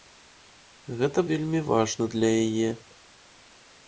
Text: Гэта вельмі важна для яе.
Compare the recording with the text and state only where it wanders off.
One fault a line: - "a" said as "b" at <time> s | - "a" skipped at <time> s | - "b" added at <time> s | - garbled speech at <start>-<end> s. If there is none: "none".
none